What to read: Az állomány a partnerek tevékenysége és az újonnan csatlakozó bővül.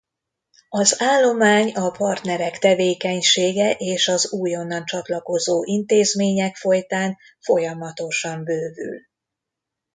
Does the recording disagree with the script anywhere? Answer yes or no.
yes